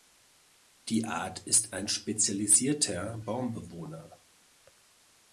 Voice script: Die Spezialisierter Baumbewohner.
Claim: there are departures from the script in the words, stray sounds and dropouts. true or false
true